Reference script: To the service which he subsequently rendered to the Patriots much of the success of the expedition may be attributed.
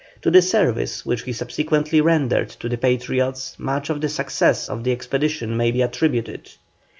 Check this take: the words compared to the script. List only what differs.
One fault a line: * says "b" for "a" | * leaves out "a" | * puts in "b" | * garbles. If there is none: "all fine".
all fine